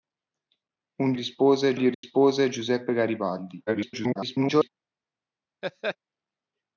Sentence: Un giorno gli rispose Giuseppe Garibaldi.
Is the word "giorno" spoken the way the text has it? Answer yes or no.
no